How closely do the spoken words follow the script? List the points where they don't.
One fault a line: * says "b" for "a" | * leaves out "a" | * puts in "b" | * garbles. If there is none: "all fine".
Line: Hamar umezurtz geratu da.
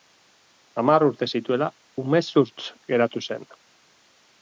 * puts in "urte zituela"
* says "zen" for "da"